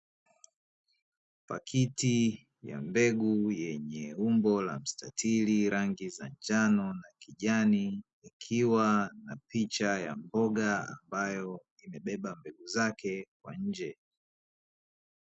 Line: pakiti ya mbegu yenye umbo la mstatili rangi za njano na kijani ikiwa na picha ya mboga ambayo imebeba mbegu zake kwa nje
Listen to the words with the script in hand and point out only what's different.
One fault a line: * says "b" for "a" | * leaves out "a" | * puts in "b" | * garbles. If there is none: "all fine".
all fine